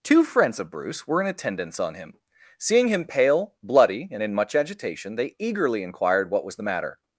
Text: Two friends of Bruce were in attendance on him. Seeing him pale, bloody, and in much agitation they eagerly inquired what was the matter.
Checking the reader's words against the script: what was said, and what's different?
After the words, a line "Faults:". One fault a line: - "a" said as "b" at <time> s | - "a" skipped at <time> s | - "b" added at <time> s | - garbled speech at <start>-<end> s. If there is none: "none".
Two friends of Bruce were in attendance on him. Seeing him pale, bloody, and in much agitation they eagerly inquired what was the matter.
Faults:
none